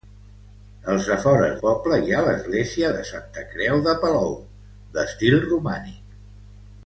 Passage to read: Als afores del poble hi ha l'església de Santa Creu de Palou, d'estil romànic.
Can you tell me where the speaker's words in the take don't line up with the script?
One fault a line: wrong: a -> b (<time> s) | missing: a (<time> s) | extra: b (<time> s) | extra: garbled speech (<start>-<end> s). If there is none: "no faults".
missing: del (1.6 s)